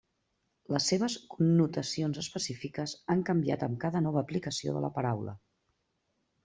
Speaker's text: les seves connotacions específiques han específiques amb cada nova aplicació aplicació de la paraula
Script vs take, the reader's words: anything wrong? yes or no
yes